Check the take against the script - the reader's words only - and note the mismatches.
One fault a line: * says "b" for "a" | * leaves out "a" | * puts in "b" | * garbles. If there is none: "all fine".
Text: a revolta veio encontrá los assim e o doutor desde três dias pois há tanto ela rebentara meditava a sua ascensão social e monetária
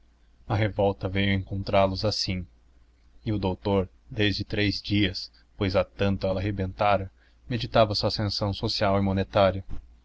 all fine